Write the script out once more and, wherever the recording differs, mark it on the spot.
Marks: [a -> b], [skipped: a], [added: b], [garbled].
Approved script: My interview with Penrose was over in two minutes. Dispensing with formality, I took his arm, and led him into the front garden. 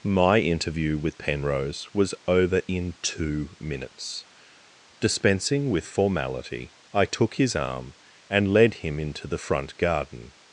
My interview with Penrose was over in two minutes. Dispensing with formality, I took his arm, and led him into the front garden.